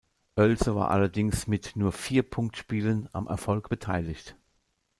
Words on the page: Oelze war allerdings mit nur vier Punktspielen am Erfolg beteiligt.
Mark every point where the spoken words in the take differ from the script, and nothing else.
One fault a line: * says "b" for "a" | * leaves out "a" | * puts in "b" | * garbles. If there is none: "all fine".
all fine